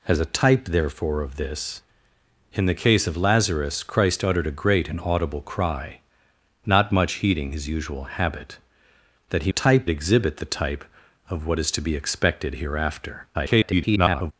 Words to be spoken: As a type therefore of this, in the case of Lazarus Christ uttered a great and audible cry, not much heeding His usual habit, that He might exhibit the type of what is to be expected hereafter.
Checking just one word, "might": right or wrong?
wrong